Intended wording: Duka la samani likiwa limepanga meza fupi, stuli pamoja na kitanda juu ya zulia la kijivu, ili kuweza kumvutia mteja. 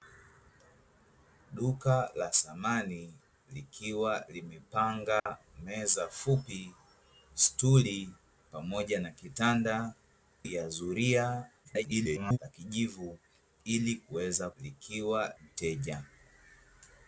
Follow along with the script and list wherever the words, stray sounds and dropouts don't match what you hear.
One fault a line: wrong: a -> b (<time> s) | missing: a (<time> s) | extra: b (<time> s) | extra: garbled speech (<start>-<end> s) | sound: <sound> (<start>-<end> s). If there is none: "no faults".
sound: dropout (5.2-5.3 s)
missing: juu (9.9 s)
extra: garbled speech (11.6-12.4 s)
wrong: kumvutia -> likiwa (14.6 s)